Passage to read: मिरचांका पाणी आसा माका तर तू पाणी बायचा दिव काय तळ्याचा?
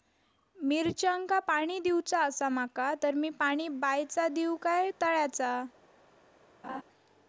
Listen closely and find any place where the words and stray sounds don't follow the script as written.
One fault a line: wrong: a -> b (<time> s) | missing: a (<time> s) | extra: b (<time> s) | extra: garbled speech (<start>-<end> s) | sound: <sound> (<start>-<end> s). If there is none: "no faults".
extra: दिवचा (1.8 s)
wrong: तू -> मी (3.1 s)
sound: laugh (6.6-6.8 s)